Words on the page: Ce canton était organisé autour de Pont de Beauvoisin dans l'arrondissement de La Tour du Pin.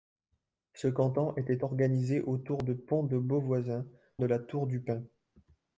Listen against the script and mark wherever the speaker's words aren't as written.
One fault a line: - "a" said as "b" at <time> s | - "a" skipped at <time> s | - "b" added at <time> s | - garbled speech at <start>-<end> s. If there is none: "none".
- "dans l'arrondissement" skipped at 3.9 s